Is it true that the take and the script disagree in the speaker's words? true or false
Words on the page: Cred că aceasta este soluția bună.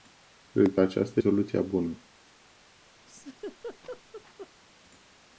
true